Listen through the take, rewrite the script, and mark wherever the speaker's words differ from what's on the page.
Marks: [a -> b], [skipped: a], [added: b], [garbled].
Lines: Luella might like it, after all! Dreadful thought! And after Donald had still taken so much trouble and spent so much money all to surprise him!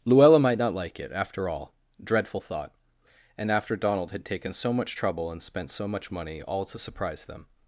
Luella might [added: not] like it, after all! Dreadful thought! And after Donald had [skipped: still] taken so much trouble and spent so much money all to surprise [him! -> them]